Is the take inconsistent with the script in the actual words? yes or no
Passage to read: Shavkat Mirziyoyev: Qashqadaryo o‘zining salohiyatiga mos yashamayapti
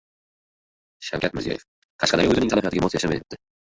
no